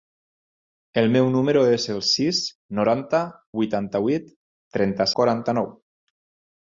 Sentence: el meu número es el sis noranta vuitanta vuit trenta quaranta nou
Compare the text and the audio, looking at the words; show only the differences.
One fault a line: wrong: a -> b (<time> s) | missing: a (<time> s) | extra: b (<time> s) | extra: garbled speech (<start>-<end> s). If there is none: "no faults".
no faults